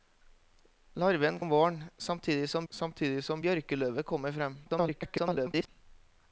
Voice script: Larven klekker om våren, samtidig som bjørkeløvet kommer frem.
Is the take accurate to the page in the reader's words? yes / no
no